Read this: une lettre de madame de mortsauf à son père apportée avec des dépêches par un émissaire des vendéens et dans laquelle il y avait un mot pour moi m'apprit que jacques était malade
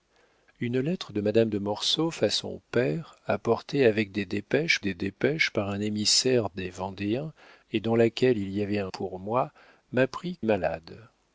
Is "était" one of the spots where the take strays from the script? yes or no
yes